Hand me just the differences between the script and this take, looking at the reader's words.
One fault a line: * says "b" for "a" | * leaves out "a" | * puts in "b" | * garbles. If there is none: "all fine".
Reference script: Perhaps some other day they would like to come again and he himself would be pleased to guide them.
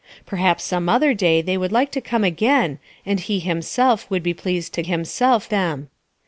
* says "himself" for "guide"